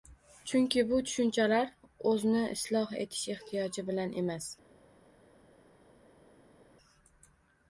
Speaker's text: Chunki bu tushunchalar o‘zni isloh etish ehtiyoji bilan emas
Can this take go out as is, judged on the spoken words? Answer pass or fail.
pass